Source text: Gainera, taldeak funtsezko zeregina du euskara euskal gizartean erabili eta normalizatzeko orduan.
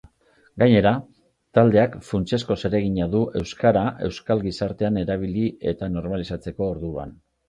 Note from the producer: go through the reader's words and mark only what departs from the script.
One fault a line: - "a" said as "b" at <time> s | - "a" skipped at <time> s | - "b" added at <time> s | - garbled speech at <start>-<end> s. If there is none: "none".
none